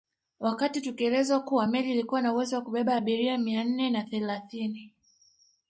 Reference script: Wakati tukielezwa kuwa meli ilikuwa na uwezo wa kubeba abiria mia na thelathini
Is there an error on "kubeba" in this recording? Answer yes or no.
no